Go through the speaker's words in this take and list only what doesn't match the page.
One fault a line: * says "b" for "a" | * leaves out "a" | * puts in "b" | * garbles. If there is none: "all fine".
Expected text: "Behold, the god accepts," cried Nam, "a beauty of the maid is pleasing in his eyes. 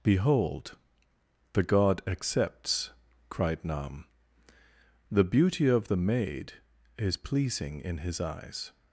* says "the" for "a"